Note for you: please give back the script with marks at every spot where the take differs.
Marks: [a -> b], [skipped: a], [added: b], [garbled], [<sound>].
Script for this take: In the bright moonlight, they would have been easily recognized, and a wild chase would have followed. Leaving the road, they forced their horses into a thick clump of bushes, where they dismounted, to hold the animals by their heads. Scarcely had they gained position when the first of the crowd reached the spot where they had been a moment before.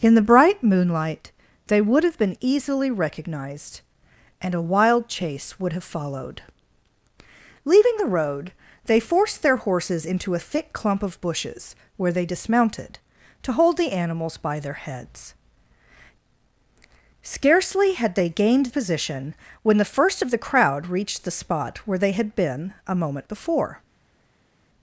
In the bright moonlight, they would have been easily recognized, and a wild chase would have followed. Leaving the road, they forced their horses into a thick clump of bushes, where they dismounted, to hold the animals by their heads. Scarcely had they gained position when the first of the crowd reached the spot where they had been a moment before.